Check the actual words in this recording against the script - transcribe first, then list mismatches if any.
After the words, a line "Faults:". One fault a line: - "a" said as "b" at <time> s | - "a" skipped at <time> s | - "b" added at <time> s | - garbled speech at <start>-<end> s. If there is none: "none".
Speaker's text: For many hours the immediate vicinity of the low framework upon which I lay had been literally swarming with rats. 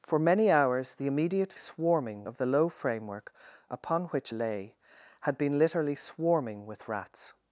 For many hours the immediate swarming of the low framework upon which lay had been literally swarming with rats.
Faults:
- "vicinity" said as "swarming" at 1.6 s
- "I" skipped at 4.3 s